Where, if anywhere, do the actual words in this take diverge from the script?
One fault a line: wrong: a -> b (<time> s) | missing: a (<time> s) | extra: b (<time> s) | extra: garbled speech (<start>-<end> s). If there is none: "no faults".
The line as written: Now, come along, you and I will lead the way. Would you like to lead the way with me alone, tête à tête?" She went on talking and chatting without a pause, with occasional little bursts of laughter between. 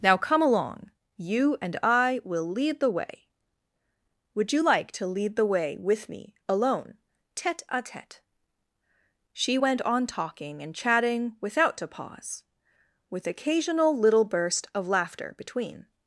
wrong: bursts -> burst (14.2 s)